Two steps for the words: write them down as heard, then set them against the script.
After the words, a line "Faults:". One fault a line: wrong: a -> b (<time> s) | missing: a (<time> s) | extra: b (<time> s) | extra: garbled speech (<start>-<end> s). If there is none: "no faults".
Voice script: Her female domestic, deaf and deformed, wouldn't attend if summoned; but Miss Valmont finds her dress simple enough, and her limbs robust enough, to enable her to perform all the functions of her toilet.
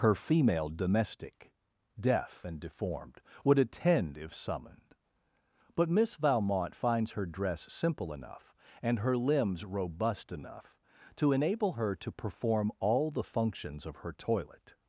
Her female domestic, deaf and deformed, would attend if summoned; but Miss Valmont finds her dress simple enough, and her limbs robust enough, to enable her to perform all the functions of her toilet.
Faults:
wrong: wouldn't -> would (3.4 s)